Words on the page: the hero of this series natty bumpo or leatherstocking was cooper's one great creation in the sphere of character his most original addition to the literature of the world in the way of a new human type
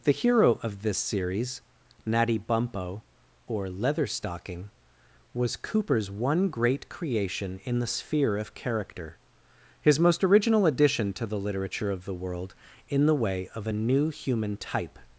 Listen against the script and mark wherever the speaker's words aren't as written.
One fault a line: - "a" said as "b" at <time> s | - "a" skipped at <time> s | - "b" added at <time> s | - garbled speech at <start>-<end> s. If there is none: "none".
none